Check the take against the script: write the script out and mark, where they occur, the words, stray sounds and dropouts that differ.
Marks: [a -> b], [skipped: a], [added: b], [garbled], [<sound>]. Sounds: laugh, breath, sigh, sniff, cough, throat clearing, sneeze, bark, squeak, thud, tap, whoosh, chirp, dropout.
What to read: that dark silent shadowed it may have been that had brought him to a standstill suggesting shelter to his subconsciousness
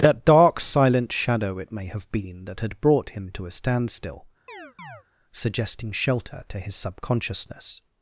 that dark silent [shadowed -> shadow] it may have been that had brought him to a standstill [chirp] suggesting shelter to his subconsciousness